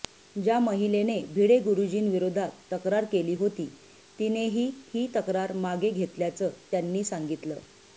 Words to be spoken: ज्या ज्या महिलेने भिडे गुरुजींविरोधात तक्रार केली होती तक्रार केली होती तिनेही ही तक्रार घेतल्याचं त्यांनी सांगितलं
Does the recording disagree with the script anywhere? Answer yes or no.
yes